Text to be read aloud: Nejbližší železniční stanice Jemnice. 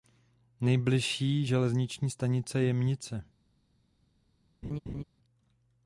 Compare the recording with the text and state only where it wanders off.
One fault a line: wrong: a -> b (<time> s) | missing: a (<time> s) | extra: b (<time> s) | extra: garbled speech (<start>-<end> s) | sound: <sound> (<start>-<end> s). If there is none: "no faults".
sound: laugh (4.6-5.0 s)